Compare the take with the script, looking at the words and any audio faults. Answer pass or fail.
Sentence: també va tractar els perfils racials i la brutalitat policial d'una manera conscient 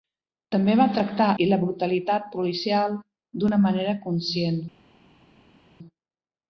fail